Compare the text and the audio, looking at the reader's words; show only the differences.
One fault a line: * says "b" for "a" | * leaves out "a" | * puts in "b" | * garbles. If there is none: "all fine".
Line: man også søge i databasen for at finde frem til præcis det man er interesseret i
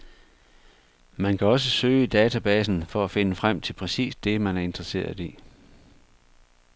* puts in "kan"